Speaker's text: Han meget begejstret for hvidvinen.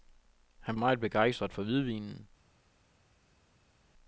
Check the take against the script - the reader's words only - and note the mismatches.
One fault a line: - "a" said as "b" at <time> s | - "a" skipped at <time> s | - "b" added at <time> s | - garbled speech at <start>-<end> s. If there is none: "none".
none